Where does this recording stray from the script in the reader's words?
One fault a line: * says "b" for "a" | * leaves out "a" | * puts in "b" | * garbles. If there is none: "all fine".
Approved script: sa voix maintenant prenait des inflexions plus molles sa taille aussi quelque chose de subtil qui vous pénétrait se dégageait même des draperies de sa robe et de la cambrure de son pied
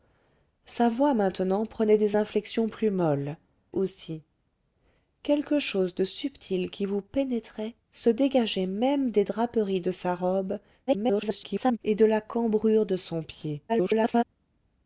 * leaves out "sa taille"
* garbles
* garbles